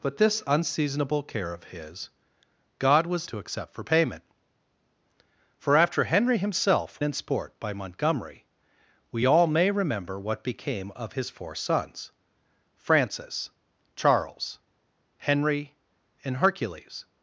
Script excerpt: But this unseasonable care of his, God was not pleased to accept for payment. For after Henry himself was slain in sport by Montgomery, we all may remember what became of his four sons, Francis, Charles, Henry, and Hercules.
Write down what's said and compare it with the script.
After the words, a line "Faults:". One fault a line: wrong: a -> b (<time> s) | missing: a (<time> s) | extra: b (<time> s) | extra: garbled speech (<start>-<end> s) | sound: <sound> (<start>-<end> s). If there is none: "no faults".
But this unseasonable care of his, God was to accept for payment. For after Henry himself in sport by Montgomery, we all may remember what became of his four sons, Francis, Charles, Henry, and Hercules.
Faults:
missing: not pleased (3.3 s)
missing: was slain (7.0 s)